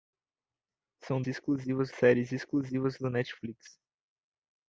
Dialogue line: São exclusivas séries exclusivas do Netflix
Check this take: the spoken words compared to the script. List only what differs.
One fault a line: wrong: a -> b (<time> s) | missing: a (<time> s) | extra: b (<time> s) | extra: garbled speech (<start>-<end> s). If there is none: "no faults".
no faults